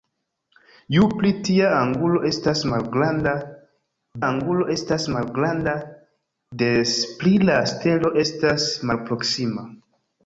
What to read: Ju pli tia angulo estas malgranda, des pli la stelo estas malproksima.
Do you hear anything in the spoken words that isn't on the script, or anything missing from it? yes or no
yes